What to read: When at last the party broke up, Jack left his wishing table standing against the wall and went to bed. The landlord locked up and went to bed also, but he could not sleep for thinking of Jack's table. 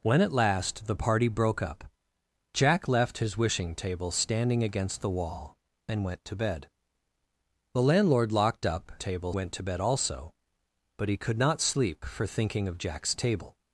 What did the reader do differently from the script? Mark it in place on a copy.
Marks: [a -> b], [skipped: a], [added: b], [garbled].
When at last the party broke up, Jack left his wishing table standing against the wall and went to bed. The landlord locked up [and -> table] went to bed also, but he could not sleep for thinking of Jack's table.